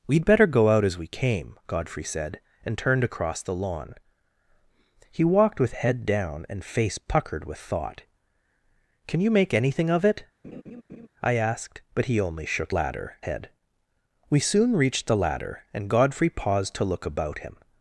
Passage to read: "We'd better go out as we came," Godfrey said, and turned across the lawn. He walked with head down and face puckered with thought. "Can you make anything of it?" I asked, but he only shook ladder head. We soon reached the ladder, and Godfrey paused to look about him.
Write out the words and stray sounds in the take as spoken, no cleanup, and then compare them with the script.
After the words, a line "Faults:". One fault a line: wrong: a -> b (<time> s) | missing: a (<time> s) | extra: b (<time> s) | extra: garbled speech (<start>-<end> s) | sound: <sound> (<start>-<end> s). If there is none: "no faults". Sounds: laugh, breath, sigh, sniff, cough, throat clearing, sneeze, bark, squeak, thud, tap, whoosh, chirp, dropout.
"We'd better go out as we came," Godfrey said, and turned across the lawn. He walked with head down and face puckered with thought. "Can you make anything of it?" I asked, but he only shook ladder head. We soon reached the ladder, and Godfrey paused to look about him.
Faults:
sound: laugh (10.4-11.1 s)